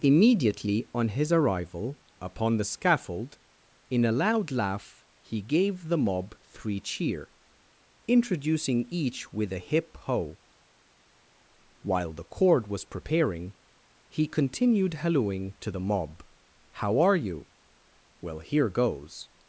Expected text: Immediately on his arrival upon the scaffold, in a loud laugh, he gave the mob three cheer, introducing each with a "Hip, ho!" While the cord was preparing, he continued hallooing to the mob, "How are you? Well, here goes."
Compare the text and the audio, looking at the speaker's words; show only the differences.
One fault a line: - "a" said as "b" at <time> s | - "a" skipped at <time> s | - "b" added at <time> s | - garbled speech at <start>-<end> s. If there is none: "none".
none